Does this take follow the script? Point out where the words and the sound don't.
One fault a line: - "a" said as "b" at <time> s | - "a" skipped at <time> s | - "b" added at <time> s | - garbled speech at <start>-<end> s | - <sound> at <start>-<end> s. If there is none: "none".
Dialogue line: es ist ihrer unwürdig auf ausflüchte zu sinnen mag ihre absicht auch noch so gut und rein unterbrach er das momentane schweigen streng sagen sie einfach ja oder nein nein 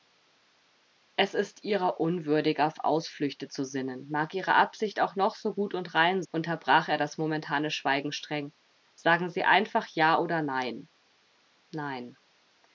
none